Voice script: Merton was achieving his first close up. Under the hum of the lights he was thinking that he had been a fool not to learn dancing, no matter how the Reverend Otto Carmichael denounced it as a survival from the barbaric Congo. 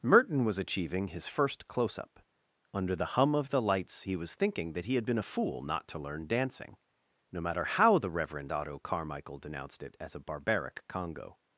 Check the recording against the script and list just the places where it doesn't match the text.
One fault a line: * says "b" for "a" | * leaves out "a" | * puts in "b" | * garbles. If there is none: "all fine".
* leaves out "survival from the"